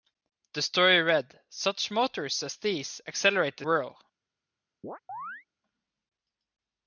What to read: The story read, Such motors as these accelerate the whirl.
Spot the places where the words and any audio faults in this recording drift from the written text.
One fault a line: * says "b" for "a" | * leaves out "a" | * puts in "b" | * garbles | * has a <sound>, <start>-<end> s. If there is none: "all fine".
* has a chirp, 4.8-5.5 s